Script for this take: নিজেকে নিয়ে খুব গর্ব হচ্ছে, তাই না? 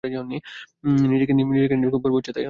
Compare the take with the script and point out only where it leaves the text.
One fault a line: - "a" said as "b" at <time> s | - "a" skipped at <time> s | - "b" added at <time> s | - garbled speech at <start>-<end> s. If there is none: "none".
none